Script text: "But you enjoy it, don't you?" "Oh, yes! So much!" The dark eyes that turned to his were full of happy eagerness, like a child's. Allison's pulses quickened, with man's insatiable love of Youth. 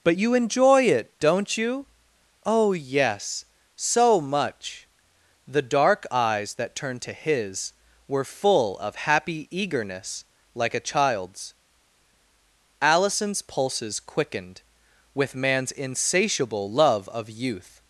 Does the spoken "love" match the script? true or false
true